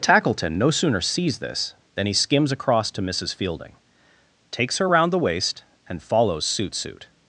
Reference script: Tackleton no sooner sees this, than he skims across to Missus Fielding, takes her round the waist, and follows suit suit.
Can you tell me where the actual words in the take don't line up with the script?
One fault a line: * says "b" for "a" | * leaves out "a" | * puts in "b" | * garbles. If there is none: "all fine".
all fine